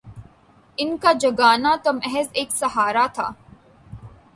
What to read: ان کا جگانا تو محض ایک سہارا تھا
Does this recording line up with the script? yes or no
yes